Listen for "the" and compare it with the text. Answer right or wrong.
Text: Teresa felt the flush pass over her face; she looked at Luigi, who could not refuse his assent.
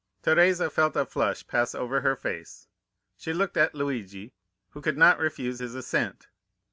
wrong